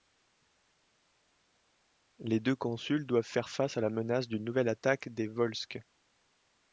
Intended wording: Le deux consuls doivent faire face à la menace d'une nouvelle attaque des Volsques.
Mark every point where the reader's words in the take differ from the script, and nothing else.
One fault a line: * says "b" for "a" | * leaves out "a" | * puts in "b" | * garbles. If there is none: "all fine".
* says "Les" for "Le"